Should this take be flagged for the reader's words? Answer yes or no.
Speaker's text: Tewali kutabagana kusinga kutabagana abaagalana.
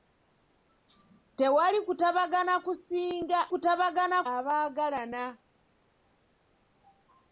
no